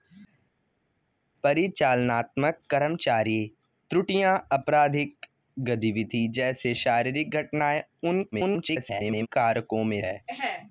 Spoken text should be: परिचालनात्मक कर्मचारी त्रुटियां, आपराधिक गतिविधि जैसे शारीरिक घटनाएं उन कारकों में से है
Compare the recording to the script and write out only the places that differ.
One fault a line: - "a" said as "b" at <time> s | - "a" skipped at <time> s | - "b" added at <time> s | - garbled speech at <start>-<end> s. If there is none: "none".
- garbled speech at 8.3-9.3 s
- "से" skipped at 10.0 s